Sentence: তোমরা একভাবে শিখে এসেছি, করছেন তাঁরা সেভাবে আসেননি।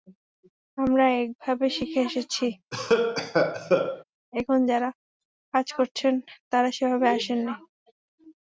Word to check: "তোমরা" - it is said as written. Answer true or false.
false